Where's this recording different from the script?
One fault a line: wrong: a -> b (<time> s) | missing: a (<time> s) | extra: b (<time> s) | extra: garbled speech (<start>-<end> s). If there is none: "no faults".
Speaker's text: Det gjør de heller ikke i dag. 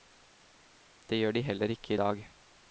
no faults